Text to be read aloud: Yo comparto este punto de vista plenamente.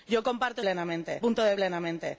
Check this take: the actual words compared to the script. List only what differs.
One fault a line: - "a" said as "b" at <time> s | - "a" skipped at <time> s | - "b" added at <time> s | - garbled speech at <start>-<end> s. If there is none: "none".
- "este" said as "plenamente" at 0.6 s
- "vista" skipped at 1.6 s